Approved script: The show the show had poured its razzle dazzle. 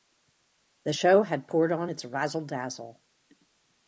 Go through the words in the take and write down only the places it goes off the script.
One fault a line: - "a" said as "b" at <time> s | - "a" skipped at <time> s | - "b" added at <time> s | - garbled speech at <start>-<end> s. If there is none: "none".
- "the show" skipped at 1.2 s
- "on" added at 1.7 s